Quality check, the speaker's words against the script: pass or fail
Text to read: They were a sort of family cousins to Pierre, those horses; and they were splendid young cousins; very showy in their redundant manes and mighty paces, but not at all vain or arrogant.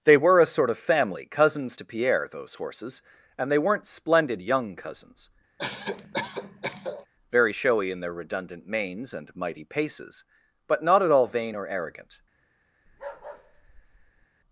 fail